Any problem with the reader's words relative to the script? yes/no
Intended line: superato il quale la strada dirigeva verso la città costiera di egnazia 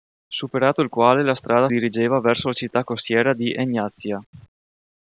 no